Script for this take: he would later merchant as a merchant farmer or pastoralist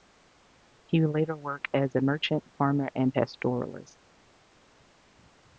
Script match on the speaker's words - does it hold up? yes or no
no